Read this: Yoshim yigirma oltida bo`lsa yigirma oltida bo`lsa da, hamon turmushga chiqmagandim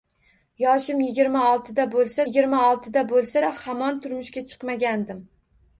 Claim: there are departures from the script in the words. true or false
false